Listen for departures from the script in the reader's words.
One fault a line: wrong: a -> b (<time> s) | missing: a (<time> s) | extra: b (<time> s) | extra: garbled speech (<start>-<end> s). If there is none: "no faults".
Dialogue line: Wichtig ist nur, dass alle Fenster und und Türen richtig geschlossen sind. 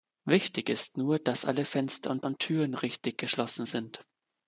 no faults